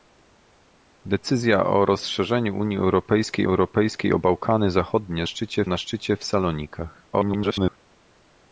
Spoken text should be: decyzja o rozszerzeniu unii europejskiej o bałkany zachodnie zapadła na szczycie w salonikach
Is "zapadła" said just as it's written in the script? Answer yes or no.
no